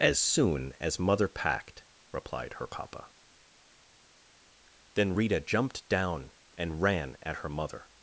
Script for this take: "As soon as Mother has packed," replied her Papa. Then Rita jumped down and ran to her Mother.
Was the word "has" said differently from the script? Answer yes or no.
yes